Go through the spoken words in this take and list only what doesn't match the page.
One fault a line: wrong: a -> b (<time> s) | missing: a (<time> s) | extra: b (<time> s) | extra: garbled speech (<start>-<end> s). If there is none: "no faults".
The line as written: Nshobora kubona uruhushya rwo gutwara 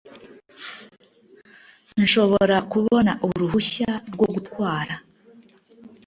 no faults